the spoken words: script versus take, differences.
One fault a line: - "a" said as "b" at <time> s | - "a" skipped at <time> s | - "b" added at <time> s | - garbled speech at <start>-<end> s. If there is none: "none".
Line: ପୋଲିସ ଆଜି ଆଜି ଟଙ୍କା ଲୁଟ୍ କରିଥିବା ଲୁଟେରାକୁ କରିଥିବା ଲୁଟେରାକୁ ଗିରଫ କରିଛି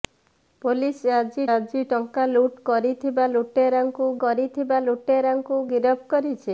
none